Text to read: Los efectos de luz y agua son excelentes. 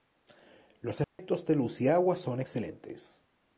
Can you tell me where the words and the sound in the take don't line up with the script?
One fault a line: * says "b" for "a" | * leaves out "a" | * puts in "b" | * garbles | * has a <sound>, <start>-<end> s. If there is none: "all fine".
* has a dropout, 1.0-1.2 s